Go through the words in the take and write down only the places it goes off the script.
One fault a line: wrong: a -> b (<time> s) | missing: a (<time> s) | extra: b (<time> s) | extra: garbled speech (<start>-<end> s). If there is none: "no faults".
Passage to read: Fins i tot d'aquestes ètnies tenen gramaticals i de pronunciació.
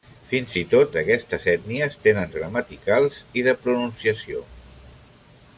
no faults